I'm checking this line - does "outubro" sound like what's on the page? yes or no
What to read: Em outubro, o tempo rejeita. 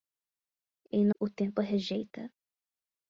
no